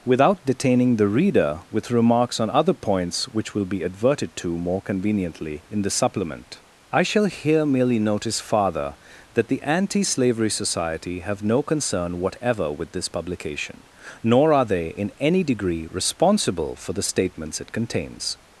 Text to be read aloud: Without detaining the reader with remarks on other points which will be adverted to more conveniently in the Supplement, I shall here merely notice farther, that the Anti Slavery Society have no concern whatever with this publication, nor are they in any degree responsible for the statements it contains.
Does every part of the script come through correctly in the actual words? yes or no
yes